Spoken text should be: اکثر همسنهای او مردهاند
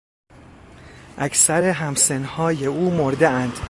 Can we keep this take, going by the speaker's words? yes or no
yes